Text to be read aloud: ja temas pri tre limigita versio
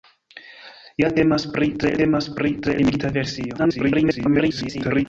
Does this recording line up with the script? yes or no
no